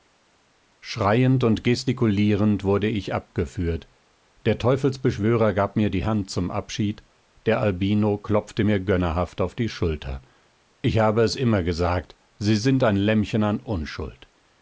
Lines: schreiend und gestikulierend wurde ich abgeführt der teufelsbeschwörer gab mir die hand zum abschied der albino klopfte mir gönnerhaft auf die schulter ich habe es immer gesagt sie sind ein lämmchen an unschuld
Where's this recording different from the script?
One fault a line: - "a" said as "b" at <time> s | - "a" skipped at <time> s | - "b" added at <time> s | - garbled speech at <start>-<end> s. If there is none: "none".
none